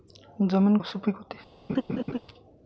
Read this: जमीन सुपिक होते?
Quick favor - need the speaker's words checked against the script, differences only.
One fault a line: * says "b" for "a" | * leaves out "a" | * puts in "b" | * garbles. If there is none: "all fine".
all fine